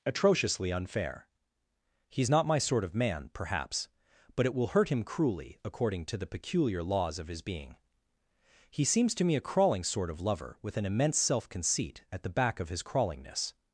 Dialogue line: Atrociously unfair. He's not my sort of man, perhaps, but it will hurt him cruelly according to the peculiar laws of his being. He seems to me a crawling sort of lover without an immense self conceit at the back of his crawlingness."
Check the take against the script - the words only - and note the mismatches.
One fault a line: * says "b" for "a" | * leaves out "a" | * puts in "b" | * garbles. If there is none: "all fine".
* says "with" for "without"